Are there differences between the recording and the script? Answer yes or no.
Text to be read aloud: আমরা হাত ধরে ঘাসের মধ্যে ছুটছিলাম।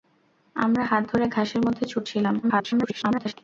yes